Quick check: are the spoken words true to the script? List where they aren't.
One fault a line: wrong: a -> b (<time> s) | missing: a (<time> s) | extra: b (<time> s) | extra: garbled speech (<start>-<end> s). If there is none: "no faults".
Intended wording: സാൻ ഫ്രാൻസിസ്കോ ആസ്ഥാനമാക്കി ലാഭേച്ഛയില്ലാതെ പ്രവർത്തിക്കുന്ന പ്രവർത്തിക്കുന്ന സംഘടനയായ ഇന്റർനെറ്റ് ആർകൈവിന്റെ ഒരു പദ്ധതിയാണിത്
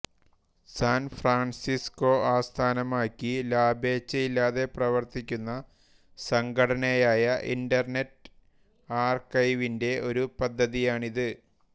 missing: പ്രവർത്തിക്കുന്ന (5.5 s)